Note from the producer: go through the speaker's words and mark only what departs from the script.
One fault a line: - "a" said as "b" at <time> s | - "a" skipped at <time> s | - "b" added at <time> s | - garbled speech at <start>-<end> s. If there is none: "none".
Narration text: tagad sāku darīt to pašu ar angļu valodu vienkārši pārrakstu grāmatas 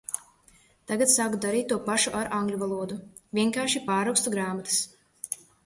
none